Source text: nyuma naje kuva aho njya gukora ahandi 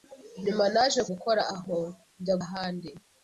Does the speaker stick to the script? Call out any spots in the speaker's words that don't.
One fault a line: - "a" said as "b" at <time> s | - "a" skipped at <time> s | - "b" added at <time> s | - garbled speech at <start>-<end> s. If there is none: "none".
- "kuva" said as "gukora" at 1.1 s
- "gukora" skipped at 2.4 s